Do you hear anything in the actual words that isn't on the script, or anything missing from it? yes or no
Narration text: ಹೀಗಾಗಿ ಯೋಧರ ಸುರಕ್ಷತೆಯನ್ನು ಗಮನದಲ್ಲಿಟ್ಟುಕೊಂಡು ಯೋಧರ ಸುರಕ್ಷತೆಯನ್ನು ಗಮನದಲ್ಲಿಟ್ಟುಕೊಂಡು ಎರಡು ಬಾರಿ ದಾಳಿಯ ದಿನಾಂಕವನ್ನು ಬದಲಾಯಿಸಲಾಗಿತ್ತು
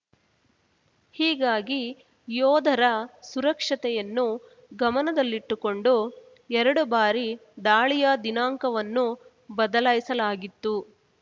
yes